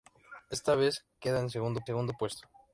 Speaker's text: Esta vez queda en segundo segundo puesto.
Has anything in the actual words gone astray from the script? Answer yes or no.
no